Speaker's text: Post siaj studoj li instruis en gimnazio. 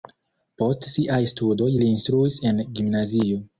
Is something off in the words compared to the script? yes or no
no